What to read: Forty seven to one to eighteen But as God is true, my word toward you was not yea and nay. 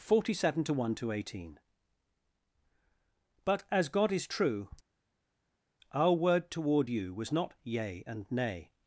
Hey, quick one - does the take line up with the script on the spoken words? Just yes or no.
no